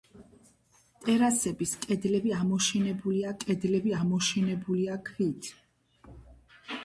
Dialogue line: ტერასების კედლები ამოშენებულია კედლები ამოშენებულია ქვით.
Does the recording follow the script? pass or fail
pass